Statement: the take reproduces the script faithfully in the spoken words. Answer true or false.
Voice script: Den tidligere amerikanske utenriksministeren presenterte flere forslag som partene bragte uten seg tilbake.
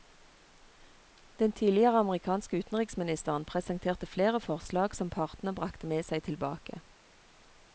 false